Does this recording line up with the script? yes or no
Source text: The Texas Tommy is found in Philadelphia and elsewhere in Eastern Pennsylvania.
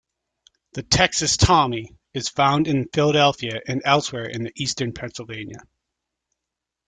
yes